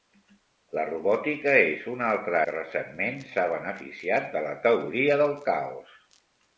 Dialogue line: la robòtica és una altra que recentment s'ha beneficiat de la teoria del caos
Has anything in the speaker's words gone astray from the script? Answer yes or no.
no